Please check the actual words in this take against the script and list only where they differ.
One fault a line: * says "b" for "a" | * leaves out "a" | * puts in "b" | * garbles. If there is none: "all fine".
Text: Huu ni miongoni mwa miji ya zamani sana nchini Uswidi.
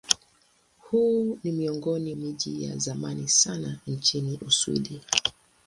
* leaves out "mwa"